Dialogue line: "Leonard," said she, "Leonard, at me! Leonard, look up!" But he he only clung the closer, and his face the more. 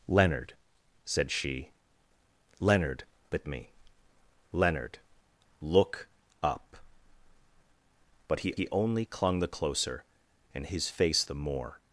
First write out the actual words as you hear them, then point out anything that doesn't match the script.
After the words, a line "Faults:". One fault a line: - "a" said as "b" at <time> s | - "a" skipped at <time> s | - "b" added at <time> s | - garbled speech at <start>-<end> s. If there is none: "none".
"Leonard," said she, "Leonard, at me! Leonard, look up!" But he he only clung the closer, and his face the more.
Faults:
none